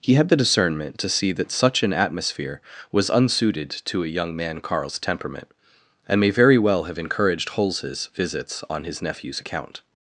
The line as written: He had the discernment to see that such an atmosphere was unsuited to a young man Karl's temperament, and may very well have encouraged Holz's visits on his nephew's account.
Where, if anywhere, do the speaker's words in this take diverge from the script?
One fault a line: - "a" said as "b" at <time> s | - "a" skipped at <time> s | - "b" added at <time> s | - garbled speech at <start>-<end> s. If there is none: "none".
none